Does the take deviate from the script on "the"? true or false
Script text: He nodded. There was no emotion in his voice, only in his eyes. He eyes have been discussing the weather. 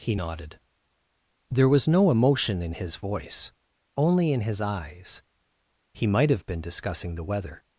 false